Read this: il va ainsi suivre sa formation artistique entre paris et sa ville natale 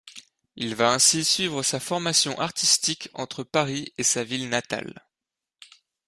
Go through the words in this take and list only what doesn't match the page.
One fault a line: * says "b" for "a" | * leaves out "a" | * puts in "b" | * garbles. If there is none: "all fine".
all fine